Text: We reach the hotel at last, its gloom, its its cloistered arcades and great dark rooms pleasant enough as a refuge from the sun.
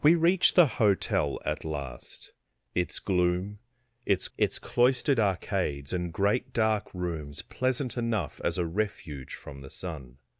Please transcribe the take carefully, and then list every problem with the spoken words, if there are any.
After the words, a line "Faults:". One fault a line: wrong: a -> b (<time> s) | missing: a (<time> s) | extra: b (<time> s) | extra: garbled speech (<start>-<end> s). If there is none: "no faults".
We reach the hotel at last, its gloom, its its cloistered arcades and great dark rooms pleasant enough as a refuge from the sun.
Faults:
no faults